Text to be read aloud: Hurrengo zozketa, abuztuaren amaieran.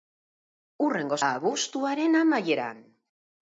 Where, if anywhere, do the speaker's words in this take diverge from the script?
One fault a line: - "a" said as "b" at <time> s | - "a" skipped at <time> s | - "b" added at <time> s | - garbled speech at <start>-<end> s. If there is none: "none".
- "zozketa" skipped at 1.2 s